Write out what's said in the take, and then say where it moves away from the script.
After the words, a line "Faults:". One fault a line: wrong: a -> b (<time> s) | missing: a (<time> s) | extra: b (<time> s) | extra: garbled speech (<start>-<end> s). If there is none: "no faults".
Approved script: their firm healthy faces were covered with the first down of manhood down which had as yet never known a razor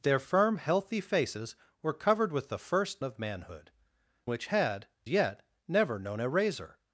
their firm healthy faces were covered with the first of manhood which had yet never known a razor
Faults:
missing: down (3.0 s)
missing: down (3.7 s)
missing: as (4.9 s)